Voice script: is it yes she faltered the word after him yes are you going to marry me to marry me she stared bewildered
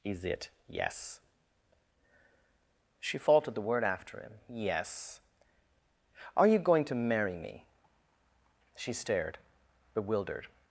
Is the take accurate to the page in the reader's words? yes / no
no